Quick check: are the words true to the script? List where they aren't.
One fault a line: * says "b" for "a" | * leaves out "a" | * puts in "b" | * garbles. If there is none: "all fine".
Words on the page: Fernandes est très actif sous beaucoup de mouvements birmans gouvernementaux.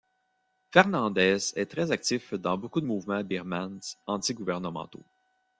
* says "dans" for "sous"
* puts in "anti"